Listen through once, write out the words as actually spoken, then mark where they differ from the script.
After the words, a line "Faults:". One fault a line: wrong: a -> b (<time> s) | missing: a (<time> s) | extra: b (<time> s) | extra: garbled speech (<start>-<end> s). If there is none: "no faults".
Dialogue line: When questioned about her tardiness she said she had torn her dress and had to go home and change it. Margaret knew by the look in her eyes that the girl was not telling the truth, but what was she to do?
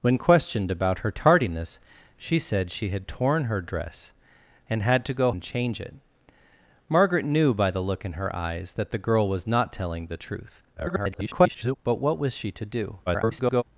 When questioned about her tardiness she said she had torn her dress and had to go and change it. Margaret knew by the look in her eyes that the girl was not telling the truth, [garbled] but what was she to do? [garbled]
Faults:
missing: home (5.3 s)
extra: garbled speech (10.8-11.8 s)
extra: garbled speech (13.1-13.6 s)